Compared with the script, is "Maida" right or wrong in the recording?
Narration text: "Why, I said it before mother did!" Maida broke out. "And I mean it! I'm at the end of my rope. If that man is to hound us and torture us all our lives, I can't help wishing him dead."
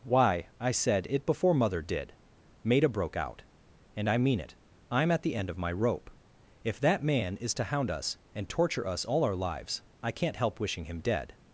right